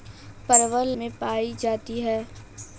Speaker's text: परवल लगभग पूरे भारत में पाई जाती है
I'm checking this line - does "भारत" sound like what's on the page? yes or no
no